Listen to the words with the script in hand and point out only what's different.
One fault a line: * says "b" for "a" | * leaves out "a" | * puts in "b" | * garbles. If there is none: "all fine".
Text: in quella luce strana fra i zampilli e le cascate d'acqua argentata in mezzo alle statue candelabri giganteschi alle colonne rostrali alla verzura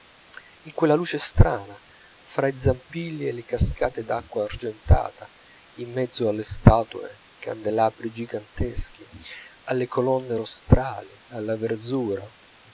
all fine